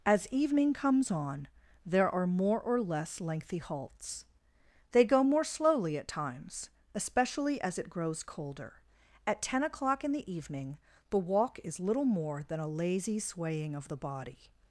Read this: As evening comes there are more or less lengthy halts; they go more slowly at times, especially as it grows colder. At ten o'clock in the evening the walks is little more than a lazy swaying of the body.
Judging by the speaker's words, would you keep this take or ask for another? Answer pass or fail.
fail